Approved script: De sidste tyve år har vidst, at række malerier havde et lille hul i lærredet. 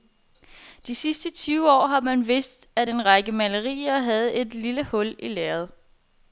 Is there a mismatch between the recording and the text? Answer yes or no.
yes